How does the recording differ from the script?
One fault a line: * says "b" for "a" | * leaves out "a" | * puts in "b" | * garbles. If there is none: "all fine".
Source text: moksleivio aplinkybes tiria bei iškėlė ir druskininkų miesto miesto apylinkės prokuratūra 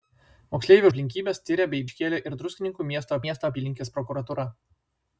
all fine